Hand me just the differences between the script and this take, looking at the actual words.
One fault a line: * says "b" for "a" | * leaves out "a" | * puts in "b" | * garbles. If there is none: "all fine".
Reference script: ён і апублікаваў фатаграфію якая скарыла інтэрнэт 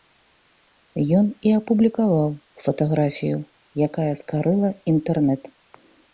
all fine